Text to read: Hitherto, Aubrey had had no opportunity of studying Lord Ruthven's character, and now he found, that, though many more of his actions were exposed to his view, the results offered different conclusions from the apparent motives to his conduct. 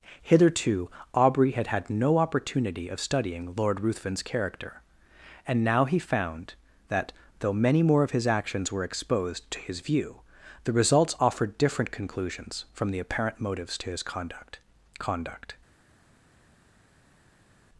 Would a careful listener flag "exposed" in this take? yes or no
no